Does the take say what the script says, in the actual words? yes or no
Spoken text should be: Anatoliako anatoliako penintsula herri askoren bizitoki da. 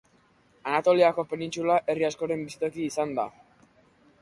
no